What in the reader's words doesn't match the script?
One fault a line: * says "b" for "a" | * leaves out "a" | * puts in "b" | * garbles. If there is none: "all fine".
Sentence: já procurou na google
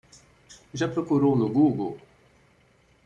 * says "no" for "na"